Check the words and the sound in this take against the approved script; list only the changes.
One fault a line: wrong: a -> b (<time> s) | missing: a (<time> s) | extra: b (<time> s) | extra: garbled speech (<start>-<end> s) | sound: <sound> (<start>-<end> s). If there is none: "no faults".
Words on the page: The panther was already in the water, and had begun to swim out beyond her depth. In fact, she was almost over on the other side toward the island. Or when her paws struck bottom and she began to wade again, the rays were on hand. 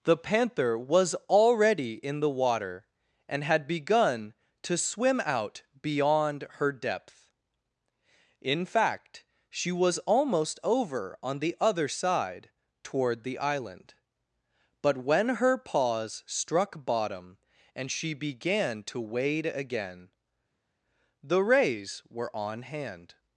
wrong: Or -> But (14.8 s)